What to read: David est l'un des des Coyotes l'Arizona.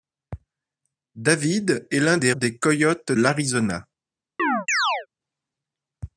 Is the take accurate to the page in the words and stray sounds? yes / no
no